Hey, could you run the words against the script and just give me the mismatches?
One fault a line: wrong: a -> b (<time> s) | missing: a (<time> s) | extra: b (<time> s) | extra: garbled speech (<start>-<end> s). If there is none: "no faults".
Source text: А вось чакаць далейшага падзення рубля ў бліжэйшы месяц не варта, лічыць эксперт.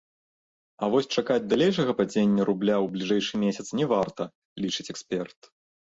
no faults